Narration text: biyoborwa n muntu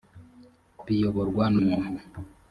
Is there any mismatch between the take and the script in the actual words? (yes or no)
no